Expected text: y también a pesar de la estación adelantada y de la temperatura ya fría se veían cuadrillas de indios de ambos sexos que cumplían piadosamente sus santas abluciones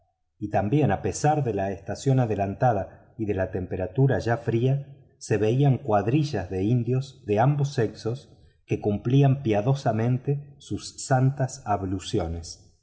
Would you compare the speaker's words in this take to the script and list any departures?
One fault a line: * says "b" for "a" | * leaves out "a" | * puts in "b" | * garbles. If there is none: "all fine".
all fine